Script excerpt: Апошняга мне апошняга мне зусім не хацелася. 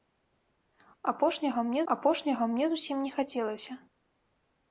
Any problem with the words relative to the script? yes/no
no